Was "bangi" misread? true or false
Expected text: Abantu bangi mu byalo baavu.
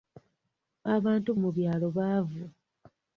true